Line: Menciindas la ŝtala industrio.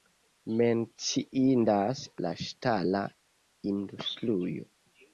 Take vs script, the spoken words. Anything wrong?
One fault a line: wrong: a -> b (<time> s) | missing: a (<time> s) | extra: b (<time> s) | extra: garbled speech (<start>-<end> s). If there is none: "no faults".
no faults